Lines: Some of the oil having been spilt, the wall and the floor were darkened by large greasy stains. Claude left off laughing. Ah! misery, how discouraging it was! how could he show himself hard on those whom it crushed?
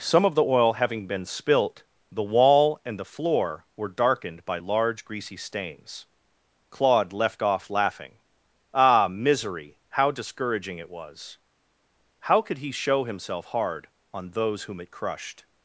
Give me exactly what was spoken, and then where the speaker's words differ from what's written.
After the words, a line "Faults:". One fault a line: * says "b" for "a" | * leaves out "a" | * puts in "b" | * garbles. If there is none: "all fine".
Some of the oil having been spilt, the wall and the floor were darkened by large greasy stains. Claude left off laughing. Ah! misery, how discouraging it was! how could he show himself hard on those whom it crushed?
Faults:
all fine